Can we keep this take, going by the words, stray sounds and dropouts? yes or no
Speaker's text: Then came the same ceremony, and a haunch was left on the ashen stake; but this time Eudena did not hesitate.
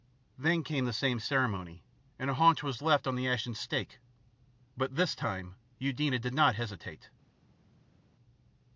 yes